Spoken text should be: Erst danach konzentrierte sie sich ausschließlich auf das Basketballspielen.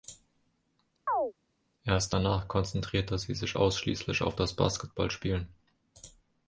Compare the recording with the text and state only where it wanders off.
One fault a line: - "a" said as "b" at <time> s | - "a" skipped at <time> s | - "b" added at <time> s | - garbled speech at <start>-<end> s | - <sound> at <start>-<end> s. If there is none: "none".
- chirp at 1.1-1.3 s